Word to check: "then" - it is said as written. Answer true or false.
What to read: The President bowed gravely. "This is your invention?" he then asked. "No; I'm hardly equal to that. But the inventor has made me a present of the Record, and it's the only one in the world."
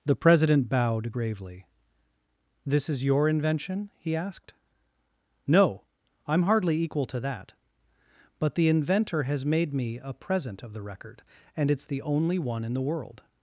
false